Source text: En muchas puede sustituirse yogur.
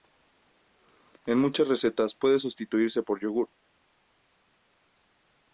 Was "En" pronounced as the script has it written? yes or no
yes